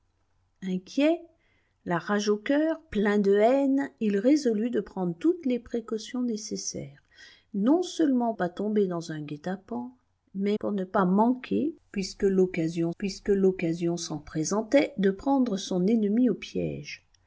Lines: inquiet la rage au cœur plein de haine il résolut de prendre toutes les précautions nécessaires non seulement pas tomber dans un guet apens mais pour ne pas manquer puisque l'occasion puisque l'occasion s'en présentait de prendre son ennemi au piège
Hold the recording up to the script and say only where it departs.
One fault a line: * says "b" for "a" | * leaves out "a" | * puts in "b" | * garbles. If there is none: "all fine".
all fine